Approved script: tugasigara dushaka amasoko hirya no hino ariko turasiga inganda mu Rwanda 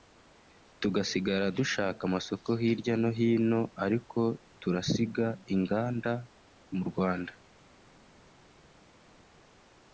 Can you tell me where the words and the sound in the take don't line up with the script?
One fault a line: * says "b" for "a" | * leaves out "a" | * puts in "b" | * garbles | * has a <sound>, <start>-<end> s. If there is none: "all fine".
all fine